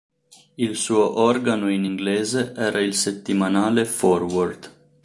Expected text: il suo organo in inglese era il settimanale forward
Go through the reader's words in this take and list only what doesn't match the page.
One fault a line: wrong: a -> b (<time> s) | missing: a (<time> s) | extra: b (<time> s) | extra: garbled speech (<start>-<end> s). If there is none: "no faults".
no faults